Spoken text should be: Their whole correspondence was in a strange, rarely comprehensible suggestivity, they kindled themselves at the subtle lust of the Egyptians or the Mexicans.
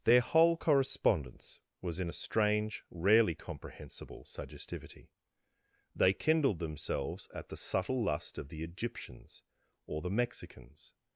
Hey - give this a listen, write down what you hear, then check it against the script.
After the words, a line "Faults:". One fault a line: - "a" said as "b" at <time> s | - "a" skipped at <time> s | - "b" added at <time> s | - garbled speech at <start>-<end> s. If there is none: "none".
Their whole correspondence was in a strange, rarely comprehensible suggestivity, they kindled themselves at the subtle lust of the Egyptians or the Mexicans.
Faults:
none